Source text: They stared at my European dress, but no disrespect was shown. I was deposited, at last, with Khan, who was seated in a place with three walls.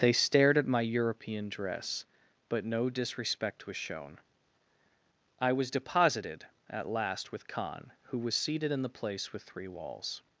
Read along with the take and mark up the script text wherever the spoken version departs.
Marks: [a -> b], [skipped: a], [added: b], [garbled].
They stared at my European dress, but no disrespect was shown. I was deposited, at last, with Khan, who was seated in [a -> the] place with three walls.